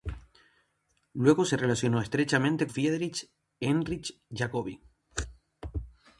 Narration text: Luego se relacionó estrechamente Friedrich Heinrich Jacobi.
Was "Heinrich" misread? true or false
false